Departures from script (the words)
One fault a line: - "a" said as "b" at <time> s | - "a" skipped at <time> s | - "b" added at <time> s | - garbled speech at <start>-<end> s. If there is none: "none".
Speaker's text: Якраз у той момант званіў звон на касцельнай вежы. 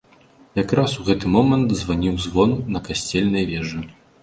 - "той" said as "гэты" at 1.1 s